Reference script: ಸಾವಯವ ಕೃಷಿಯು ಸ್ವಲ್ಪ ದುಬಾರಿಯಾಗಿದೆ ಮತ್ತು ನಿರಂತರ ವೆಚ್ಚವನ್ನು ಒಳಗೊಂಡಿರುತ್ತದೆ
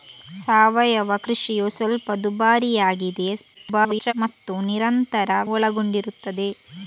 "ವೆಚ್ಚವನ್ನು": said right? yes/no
no